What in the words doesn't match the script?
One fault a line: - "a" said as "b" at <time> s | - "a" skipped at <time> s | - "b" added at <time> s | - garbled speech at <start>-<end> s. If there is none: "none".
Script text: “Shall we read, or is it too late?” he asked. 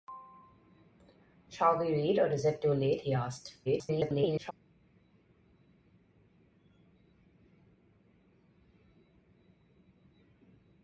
- garbled speech at 3.7-4.5 s